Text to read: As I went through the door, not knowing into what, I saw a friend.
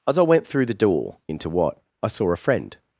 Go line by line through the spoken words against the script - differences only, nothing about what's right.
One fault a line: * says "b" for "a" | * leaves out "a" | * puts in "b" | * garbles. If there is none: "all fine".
* leaves out "not knowing"